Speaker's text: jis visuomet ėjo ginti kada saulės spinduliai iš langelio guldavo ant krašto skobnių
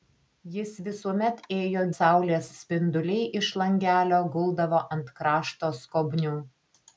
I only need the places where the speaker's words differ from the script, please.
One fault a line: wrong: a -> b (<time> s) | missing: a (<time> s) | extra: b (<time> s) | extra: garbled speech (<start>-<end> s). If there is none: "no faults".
missing: ginti kada (1.8 s)